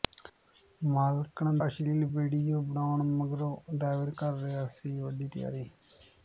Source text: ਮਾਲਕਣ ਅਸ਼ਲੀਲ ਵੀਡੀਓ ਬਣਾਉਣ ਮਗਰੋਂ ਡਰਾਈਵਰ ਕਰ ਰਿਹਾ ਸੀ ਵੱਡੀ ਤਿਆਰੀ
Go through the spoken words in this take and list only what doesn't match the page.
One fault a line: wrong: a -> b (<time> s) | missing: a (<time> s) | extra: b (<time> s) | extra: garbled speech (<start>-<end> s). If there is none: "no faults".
no faults